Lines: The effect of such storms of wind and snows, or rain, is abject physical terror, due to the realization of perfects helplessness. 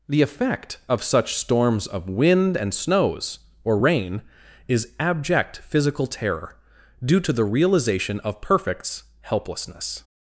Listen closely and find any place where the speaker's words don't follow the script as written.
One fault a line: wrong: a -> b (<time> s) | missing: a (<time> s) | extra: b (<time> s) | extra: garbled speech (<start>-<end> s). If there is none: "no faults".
no faults